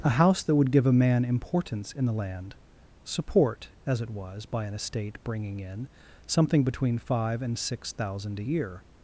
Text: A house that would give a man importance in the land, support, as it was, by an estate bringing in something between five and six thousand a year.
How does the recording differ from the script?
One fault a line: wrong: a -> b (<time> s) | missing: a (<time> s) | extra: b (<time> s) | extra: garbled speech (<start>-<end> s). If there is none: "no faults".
no faults